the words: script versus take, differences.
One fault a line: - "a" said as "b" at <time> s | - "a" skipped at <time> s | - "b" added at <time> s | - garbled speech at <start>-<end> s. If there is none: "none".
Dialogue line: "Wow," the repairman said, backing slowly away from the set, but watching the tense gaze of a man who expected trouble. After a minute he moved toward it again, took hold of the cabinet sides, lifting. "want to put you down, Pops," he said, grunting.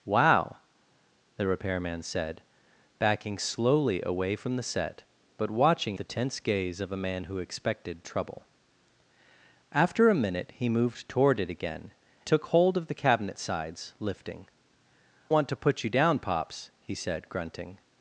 none